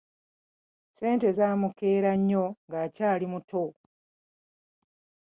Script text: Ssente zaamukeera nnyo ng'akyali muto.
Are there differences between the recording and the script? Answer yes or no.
no